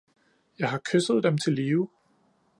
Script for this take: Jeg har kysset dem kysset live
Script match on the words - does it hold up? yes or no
no